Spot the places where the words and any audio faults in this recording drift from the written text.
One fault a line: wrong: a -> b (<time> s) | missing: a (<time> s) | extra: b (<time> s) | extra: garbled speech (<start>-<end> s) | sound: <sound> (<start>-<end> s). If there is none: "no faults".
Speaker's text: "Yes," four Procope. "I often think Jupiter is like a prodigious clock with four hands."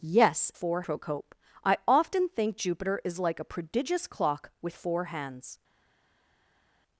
no faults